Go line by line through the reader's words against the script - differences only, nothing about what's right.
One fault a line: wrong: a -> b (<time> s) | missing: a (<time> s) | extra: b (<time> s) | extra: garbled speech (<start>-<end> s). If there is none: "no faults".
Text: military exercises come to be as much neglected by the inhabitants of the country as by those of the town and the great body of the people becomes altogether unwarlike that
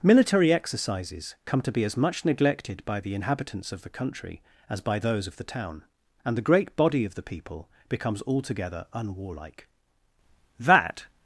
no faults